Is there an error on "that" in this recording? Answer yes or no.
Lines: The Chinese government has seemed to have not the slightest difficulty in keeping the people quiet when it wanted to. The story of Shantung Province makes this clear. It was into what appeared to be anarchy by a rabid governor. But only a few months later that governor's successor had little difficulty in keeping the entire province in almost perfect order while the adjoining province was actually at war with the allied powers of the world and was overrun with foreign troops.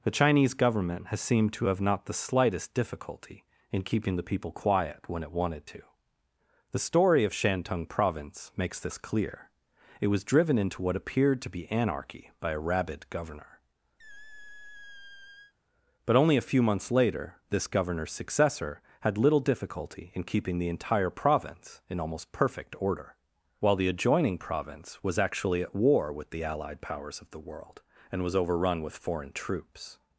yes